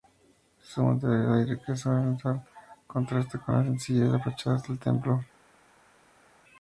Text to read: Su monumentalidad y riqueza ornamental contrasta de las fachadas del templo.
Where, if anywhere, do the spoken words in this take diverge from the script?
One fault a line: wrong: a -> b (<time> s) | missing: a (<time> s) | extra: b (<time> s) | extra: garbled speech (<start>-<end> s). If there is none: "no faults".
extra: con la sencillez (3.4 s)